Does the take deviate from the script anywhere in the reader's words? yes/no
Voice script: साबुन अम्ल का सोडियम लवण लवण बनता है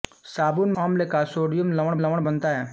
no